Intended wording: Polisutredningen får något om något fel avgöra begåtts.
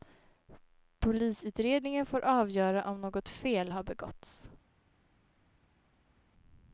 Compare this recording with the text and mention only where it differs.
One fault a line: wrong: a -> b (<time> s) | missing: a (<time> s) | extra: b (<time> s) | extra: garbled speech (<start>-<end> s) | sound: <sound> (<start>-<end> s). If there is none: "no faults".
wrong: något -> avgöra (2.2 s)
wrong: avgöra -> har (3.7 s)